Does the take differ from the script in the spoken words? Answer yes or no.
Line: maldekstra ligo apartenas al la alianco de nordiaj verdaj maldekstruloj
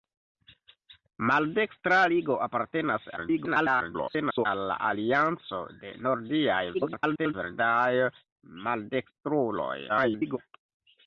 yes